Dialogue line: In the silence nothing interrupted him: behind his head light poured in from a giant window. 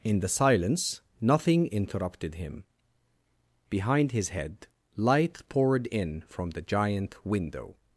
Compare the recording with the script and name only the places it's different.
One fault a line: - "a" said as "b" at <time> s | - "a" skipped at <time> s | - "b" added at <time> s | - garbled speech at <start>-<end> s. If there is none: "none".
- "a" said as "the" at 6.5 s